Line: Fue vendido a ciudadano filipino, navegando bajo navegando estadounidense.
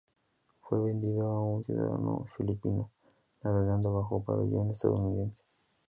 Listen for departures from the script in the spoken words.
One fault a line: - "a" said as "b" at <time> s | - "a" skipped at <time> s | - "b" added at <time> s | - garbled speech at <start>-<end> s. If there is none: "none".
- "un" added at 1.4 s
- "navegando" said as "pabellón" at 4.2 s